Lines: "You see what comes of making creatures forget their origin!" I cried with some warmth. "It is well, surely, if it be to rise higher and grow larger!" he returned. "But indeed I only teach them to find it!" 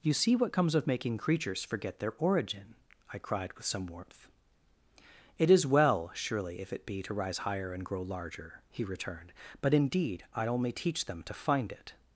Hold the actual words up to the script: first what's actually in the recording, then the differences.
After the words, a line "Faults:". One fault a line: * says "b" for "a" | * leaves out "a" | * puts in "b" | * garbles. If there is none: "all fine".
"You see what comes of making creatures forget their origin!" I cried with some warmth. "It is well, surely, if it be to rise higher and grow larger!" he returned. "But indeed I only teach them to find it!"
Faults:
all fine